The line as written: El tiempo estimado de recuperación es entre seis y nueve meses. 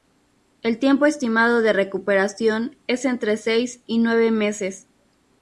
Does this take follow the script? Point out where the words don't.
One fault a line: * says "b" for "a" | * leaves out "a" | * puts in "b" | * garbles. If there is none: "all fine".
all fine